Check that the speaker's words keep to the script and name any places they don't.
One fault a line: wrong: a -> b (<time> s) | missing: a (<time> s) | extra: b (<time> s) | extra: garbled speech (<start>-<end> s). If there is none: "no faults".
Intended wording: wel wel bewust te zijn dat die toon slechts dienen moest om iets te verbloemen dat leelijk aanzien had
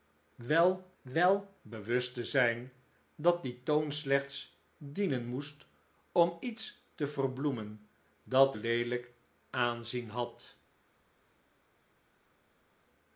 no faults